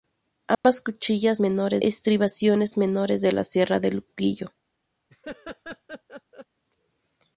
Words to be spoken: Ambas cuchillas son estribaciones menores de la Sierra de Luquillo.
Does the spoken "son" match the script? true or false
false